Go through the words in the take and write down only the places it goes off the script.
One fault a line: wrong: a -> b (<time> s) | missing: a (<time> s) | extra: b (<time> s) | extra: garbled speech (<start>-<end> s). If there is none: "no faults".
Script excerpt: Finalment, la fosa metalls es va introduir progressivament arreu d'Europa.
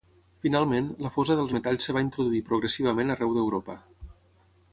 extra: dels (1.4 s)